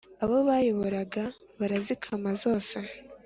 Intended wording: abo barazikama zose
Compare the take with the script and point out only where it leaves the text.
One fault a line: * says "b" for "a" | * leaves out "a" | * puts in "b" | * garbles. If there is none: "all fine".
* puts in "bayoboraga"